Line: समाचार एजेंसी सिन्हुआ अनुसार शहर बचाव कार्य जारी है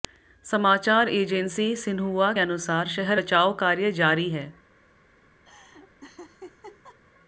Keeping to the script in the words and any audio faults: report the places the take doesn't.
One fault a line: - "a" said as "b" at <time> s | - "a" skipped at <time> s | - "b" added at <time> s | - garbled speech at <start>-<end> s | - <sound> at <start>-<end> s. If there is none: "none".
- laugh at 5.4-7.0 s